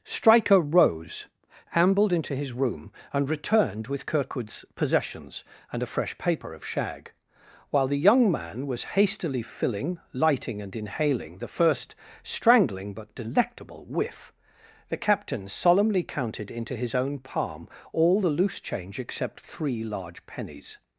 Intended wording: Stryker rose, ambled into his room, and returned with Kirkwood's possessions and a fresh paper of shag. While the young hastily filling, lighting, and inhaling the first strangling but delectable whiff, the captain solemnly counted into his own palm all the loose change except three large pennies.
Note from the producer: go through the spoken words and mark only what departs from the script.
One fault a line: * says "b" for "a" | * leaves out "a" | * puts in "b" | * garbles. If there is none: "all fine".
* puts in "man was"